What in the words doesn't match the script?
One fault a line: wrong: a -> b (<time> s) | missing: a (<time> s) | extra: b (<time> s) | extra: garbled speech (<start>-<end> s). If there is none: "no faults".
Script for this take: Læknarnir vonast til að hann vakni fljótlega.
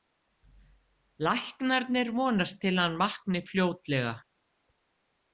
no faults